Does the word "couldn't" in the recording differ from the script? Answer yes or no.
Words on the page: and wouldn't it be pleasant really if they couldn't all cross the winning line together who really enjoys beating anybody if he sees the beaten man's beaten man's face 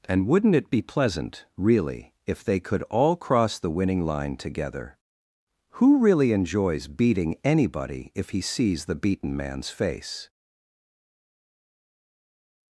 yes